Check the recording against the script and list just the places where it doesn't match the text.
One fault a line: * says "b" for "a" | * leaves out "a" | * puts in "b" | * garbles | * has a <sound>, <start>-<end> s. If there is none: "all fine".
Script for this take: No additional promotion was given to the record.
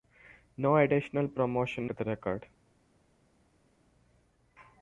* leaves out "was given"